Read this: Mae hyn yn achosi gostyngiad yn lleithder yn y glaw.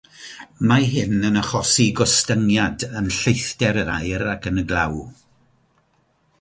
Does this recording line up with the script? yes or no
no